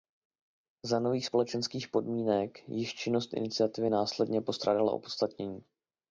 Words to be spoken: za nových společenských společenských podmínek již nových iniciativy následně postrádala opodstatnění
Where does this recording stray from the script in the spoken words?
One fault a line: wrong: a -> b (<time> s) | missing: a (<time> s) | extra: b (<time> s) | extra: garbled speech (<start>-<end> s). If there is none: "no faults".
missing: společenských (1.9 s)
wrong: nových -> činnost (2.9 s)